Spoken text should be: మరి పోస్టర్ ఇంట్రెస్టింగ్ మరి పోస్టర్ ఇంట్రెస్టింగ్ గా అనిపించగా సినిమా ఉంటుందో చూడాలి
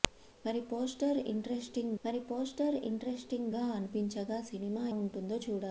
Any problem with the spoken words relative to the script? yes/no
no